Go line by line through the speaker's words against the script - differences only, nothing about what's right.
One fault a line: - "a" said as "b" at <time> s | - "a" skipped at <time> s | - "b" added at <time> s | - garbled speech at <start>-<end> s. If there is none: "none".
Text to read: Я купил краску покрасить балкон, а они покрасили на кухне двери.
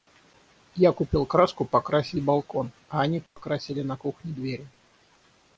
none